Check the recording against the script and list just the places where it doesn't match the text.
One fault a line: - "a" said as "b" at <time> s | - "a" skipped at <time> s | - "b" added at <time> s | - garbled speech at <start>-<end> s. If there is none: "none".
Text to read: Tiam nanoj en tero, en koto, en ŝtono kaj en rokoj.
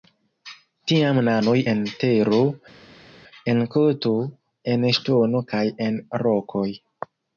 none